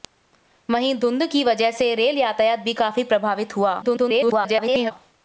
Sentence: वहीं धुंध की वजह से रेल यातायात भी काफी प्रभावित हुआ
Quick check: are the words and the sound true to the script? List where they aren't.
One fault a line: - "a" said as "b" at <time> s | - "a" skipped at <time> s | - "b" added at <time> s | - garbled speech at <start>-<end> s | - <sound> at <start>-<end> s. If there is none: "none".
- garbled speech at 3.8-4.9 s